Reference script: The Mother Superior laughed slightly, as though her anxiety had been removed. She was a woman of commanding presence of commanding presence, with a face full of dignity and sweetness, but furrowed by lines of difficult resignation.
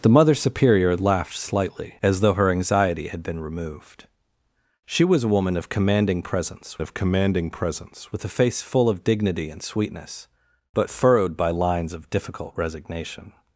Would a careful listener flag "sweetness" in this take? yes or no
no